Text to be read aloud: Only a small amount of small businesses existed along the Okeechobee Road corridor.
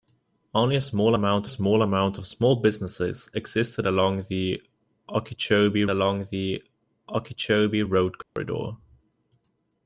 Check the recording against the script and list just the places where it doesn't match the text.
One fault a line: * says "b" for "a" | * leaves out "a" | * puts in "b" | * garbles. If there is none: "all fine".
* puts in "small amount"
* puts in "along the Okeechobee"